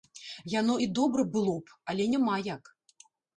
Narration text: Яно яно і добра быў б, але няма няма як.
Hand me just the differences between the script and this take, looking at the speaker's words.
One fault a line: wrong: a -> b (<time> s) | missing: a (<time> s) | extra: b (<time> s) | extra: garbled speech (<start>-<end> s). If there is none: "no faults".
missing: яно (0.8 s)
wrong: быў -> было (1.4 s)
missing: няма (2.4 s)